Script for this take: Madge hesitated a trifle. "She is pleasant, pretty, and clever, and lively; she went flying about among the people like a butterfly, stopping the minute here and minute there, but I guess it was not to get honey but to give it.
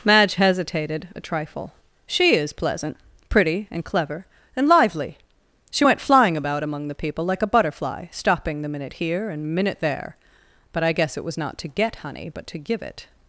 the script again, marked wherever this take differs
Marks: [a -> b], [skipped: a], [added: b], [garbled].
Madge hesitated a trifle. "She is pleasant, pretty, and clever, and lively; she went flying about among the people like a butterfly, stopping the minute here and minute there, but I guess it was not to get honey but to give it.